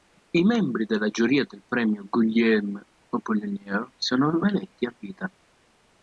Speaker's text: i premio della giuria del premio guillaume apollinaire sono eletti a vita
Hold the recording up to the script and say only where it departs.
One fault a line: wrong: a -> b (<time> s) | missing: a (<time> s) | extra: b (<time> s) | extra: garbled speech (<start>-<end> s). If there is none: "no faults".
wrong: premio -> membri (0.4 s)